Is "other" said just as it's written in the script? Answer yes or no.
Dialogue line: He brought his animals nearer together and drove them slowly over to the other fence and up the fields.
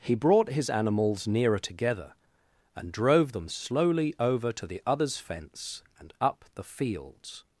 no